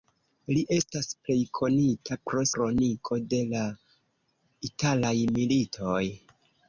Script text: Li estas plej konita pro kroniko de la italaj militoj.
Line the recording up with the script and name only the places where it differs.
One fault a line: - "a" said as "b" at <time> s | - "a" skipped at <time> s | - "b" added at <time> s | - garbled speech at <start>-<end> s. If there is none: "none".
none